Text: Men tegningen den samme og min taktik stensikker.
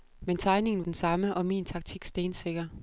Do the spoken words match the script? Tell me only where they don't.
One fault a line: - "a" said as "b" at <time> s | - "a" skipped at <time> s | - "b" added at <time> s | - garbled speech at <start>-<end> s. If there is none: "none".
none